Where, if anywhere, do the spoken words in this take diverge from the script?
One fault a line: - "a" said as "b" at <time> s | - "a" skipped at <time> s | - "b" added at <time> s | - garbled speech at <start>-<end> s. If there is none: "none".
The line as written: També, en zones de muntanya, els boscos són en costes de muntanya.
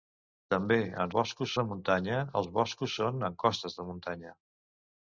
- "zones" said as "boscos" at 1.2 s